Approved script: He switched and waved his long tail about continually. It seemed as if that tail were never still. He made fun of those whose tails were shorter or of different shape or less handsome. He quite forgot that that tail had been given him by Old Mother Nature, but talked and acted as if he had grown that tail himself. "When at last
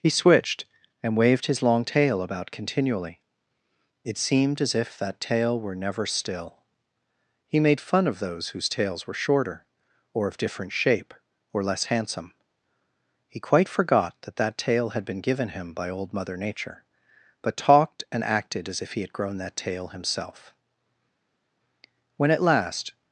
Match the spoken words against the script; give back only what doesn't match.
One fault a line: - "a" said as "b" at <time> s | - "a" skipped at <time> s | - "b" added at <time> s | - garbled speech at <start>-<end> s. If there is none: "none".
none